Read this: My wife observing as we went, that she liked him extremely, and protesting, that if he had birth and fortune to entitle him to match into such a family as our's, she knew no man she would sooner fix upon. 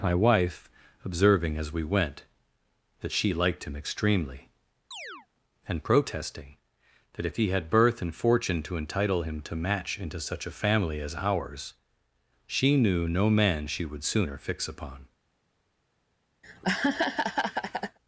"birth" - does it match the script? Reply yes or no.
yes